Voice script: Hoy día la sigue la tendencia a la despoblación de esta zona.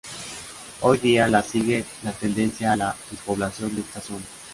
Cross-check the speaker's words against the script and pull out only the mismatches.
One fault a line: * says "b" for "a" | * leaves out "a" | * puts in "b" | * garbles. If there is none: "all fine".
all fine